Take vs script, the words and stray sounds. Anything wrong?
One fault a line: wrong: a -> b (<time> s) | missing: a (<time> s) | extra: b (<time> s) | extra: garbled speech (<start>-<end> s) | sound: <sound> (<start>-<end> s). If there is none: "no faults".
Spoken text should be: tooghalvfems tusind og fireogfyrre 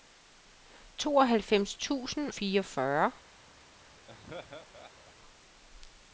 missing: og (2.3 s)
sound: laugh (4.1-5.1 s)